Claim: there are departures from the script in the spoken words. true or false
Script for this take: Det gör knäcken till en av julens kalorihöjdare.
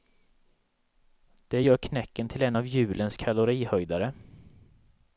false